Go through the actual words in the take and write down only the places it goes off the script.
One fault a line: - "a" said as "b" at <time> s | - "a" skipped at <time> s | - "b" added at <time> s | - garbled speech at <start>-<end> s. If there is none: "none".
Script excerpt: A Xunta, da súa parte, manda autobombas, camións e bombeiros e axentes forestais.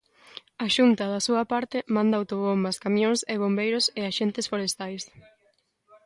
none